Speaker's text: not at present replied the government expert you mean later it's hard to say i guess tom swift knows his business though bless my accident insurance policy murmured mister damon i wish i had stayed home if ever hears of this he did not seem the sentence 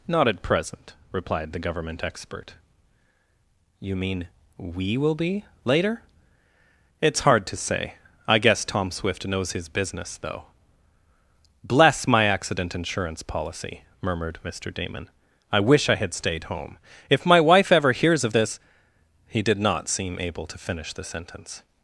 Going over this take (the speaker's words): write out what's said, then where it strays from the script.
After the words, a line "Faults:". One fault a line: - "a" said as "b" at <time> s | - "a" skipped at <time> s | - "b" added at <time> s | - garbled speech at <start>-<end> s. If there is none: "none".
not at present replied the government expert you mean we will be later it's hard to say i guess tom swift knows his business though bless my accident insurance policy murmured mister damon i wish i had stayed home if my wife ever hears of this he did not seem able to finish the sentence
Faults:
- "we will be" added at 4.6 s
- "my wife" added at 17.2 s
- "able to finish" added at 20.2 s